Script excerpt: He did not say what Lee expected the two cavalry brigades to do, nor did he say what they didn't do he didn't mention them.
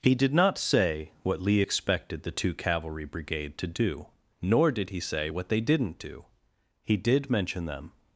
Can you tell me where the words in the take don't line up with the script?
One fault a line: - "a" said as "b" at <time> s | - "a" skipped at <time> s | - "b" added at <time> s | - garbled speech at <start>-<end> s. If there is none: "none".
- "brigades" said as "brigade" at 3.0 s
- "didn't" said as "did" at 6.9 s